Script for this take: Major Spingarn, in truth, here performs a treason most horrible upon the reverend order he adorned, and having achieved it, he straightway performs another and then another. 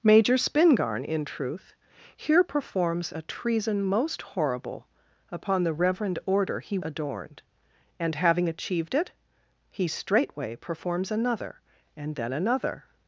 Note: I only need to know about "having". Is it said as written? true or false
true